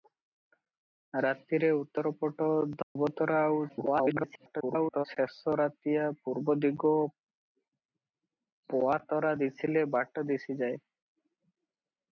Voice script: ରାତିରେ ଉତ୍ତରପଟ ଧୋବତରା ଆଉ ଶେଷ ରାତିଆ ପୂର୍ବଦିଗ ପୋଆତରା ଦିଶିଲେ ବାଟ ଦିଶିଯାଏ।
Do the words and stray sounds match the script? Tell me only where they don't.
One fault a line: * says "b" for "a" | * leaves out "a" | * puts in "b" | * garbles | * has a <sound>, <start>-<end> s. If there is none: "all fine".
* has a dropout, 2.8-3.0 s
* garbles